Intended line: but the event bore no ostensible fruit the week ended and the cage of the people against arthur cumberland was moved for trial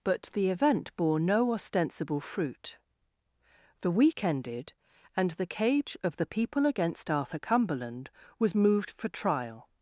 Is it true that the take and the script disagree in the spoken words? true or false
false